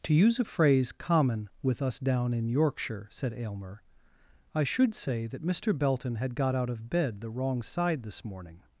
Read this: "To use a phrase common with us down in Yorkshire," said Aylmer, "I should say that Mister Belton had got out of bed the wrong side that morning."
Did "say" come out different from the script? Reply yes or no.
no